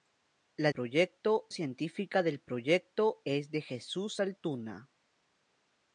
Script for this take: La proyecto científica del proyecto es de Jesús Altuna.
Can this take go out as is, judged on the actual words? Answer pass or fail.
pass